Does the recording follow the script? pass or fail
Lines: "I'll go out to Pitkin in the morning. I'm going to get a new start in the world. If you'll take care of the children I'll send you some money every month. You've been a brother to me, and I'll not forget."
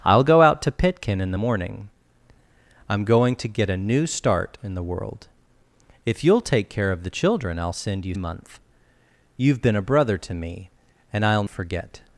fail